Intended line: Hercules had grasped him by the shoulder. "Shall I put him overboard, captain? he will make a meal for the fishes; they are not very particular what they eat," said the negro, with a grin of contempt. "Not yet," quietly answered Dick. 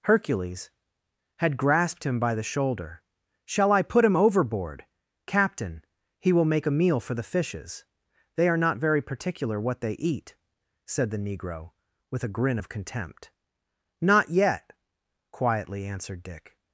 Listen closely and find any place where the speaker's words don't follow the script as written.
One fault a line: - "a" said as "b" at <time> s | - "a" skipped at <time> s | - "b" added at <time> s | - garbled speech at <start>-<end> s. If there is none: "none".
none